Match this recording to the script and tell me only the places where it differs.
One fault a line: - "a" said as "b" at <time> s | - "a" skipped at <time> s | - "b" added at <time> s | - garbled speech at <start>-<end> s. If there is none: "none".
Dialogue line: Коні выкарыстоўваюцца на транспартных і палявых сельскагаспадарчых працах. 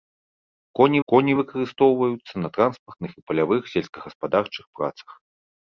- "коні" added at 1.1 s